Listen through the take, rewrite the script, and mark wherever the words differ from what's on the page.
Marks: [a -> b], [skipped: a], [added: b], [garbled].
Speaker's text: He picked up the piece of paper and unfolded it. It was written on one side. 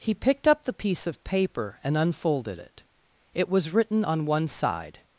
He picked up the piece of paper and unfolded it. It was written on one side.